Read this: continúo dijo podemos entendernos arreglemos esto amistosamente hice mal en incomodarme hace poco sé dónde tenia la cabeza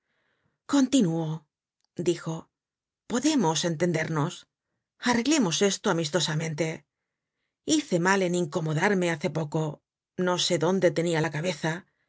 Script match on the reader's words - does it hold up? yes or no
no